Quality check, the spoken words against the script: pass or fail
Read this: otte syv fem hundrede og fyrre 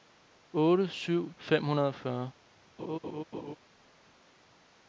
pass